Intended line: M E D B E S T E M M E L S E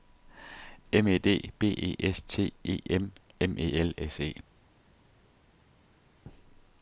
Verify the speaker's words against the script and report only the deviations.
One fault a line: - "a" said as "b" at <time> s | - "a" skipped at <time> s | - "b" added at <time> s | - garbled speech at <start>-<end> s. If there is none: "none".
none